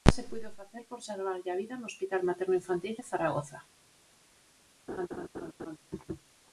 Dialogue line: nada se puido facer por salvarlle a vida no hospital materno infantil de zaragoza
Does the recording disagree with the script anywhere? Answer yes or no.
no